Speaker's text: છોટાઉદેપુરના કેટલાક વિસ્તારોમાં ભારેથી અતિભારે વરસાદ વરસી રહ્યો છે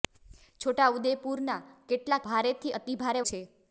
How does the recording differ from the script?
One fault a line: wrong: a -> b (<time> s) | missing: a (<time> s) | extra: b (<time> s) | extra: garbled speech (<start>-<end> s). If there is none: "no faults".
missing: વિસ્તારોમાં (2.2 s)
missing: વરસાદ વરસી રહ્યો (3.2 s)